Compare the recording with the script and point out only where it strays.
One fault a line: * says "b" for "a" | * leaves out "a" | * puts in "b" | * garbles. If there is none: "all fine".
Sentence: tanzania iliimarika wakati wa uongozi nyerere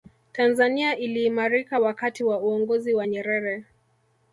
* puts in "wa"